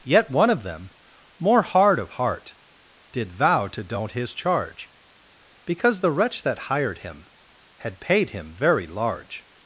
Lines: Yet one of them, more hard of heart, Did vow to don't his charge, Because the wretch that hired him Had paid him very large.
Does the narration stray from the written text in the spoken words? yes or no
no